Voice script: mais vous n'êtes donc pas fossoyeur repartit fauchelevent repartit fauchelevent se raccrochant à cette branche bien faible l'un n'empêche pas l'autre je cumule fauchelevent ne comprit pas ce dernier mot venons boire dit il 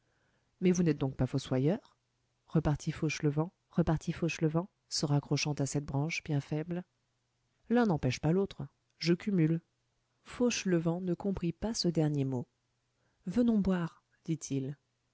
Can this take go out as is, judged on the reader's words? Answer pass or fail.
pass